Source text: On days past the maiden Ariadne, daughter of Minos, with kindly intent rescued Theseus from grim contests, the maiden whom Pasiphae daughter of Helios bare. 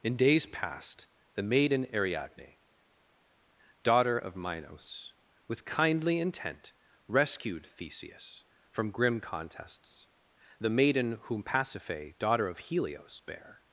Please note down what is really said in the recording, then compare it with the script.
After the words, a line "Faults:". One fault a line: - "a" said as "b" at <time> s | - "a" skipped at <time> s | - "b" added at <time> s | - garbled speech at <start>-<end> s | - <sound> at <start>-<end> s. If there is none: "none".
In days past the maiden Ariadne, daughter of Minos, with kindly intent rescued Theseus from grim contests, the maiden whom Pasiphae daughter of Helios bare.
Faults:
- "On" said as "In" at 0.0 s